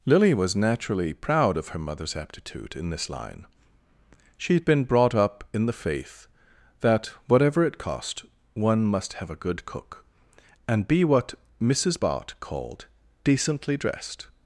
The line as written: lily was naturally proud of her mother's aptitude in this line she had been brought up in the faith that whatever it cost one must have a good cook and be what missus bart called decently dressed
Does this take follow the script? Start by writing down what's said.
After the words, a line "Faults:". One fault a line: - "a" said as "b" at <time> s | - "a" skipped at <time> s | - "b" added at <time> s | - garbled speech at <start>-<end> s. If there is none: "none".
lily was naturally proud of her mother's aptitude in this line she had been brought up in the faith that whatever it cost one must have a good cook and be what missus bart called decently dressed
Faults:
none